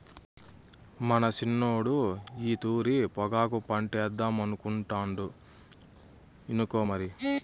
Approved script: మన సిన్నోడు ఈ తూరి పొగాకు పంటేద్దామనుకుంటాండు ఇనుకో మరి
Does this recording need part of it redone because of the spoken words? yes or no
no